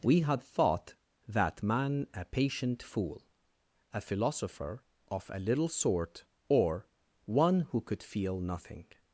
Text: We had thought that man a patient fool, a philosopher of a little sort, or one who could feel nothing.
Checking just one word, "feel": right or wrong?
right